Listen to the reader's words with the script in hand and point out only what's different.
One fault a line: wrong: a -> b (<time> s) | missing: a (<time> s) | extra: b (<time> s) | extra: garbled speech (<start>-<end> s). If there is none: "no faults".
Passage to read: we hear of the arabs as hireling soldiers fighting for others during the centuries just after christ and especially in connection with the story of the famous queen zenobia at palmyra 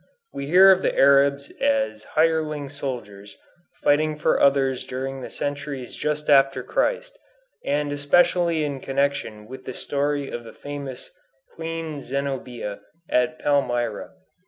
no faults